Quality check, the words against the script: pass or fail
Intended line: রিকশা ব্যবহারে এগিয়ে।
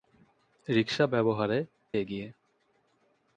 pass